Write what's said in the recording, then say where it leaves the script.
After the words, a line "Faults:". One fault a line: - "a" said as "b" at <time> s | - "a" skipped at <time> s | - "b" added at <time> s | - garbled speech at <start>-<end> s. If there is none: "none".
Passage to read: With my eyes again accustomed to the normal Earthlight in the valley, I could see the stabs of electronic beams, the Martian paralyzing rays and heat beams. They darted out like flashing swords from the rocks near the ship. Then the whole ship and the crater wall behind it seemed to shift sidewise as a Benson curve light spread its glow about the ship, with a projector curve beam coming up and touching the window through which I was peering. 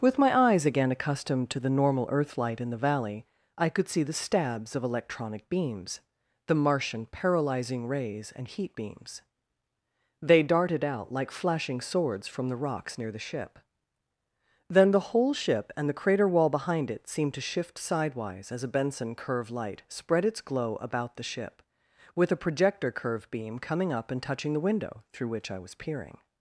With my eyes again accustomed to the normal Earthlight in the valley, I could see the stabs of electronic beams, the Martian paralyzing rays and heat beams. They darted out like flashing swords from the rocks near the ship. Then the whole ship and the crater wall behind it seemed to shift sidewise as a Benson curve light spread its glow about the ship, with a projector curve beam coming up and touching the window through which I was peering.
Faults:
none